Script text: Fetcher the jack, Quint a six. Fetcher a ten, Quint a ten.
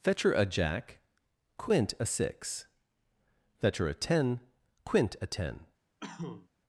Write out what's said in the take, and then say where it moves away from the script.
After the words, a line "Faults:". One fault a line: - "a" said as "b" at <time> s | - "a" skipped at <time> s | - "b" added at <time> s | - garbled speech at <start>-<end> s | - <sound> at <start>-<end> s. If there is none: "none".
Fetcher a jack, Quint a six. Fetcher a ten, Quint a ten.
Faults:
- "the" said as "a" at 0.3 s
- cough at 6.0-6.5 s